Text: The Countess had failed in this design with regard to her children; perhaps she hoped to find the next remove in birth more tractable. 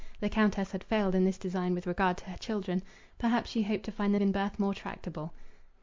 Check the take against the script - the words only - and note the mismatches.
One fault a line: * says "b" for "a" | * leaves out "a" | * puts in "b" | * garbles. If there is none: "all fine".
* leaves out "next remove"